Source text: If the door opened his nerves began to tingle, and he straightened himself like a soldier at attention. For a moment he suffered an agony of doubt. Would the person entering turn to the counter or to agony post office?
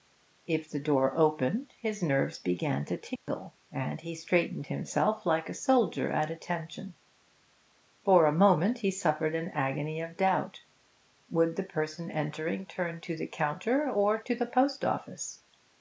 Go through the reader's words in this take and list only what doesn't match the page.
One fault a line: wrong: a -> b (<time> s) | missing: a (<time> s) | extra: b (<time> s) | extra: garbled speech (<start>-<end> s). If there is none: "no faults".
wrong: agony -> the (14.4 s)